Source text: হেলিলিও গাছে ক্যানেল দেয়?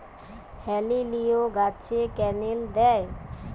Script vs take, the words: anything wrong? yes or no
no